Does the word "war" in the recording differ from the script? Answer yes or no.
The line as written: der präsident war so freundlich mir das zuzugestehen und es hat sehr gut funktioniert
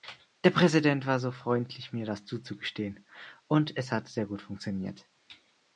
no